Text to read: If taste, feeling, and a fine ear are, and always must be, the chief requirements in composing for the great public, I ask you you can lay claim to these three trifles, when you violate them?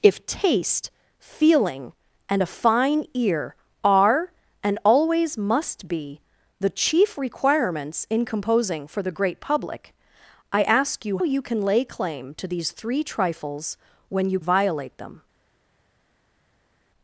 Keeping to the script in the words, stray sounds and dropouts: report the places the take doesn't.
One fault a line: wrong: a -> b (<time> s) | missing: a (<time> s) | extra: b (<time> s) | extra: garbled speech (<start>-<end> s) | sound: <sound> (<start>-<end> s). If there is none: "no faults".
no faults